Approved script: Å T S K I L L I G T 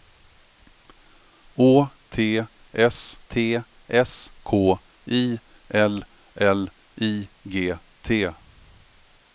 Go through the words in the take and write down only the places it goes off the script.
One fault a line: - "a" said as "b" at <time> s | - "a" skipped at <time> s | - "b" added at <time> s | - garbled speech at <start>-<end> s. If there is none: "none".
- "T S" added at 3.3 s